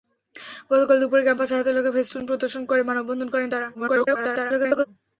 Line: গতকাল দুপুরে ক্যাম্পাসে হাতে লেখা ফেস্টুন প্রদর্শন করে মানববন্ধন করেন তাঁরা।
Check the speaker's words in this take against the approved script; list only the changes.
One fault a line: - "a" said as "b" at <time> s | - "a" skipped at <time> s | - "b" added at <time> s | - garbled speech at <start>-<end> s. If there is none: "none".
- garbled speech at 3.7-4.9 s